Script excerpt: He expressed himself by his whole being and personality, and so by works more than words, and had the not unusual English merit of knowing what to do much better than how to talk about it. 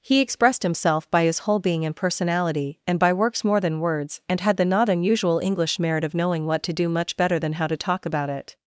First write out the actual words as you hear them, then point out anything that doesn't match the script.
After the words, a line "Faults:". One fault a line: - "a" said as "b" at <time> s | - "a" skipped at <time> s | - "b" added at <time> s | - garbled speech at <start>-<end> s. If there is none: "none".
He expressed himself by his whole being and personality, and by works more than words, and had the not unusual English merit of knowing what to do much better than how to talk about it.
Faults:
- "so" skipped at 3.0 s